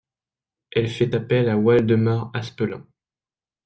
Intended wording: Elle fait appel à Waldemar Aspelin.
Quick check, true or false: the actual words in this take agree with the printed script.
true